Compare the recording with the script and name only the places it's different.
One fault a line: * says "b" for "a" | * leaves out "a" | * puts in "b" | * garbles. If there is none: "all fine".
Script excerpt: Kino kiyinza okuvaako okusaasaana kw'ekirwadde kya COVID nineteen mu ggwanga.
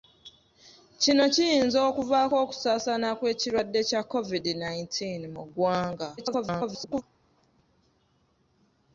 * garbles